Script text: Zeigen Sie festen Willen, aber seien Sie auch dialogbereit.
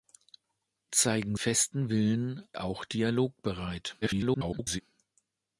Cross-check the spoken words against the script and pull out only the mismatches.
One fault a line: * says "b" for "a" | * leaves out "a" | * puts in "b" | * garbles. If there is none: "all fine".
* leaves out "Sie"
* leaves out "aber seien Sie"
* garbles